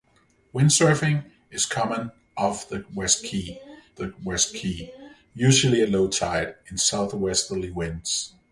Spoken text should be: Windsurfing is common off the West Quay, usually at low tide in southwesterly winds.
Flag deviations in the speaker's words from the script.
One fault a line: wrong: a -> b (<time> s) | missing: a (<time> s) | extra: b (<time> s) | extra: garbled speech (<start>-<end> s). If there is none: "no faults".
extra: the West Quay (3.9 s)